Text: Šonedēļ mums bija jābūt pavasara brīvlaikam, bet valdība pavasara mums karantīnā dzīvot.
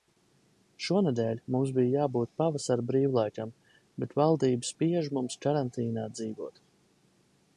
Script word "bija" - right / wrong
right